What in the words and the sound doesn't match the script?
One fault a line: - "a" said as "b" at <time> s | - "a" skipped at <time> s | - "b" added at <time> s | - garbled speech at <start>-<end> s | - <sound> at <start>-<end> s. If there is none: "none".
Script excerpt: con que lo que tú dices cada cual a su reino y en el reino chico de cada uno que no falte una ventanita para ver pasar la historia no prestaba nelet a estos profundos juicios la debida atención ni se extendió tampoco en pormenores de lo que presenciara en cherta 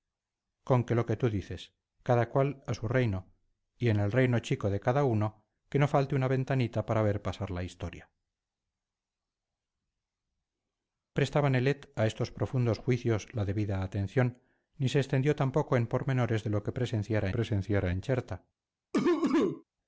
- "no" skipped at 8.1 s
- "presenciara" added at 17.3 s
- cough at 18.9-19.6 s